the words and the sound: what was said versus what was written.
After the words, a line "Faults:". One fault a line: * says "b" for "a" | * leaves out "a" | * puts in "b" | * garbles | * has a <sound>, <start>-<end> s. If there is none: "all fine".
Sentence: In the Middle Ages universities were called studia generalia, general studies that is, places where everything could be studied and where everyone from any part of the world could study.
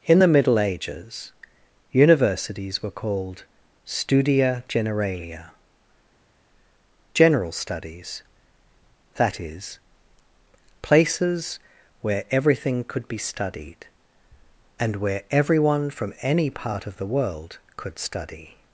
In the Middle Ages universities were called studia generalia, general studies that is, places where everything could be studied and where everyone from any part of the world could study.
Faults:
all fine